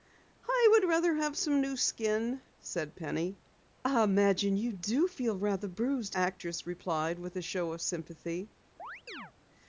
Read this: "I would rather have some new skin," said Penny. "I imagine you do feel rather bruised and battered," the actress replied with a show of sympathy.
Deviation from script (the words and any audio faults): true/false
true